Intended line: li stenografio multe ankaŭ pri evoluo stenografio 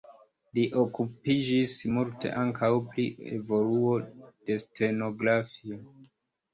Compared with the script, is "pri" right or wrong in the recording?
right